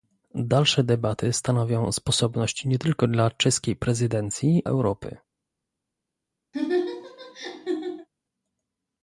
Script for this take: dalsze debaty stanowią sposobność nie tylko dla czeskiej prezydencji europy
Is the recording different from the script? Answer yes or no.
no